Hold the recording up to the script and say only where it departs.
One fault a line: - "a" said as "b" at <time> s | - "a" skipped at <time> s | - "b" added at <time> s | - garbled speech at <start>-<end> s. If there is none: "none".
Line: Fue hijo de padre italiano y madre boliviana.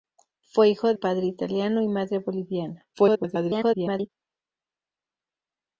- "de" skipped at 0.9 s
- garbled speech at 2.9-4.1 s